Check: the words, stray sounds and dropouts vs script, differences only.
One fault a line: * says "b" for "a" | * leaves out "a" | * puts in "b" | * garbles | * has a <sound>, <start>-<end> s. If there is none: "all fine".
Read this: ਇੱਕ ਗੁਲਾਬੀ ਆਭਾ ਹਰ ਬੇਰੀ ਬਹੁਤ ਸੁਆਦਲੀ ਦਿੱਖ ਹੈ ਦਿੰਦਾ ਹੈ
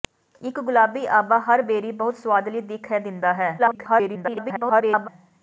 * garbles